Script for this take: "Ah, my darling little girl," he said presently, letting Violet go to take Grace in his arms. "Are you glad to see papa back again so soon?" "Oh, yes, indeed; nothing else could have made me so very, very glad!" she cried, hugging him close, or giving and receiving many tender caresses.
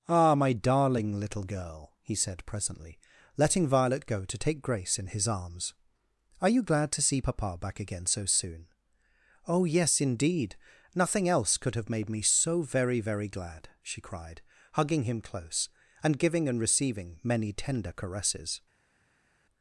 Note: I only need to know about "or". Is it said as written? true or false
false